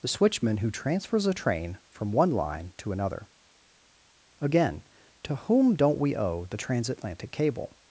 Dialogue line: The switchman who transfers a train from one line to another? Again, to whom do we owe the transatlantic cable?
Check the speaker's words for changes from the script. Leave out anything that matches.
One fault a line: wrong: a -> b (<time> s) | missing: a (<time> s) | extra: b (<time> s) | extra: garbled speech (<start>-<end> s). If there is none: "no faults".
wrong: do -> don't (5.8 s)